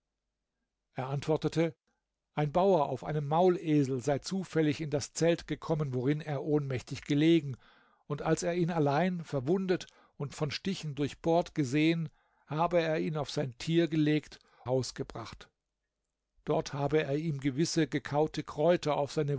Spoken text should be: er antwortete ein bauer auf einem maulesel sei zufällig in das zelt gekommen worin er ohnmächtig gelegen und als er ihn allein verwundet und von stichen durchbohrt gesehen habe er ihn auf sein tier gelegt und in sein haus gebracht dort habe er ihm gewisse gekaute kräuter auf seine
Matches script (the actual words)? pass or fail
fail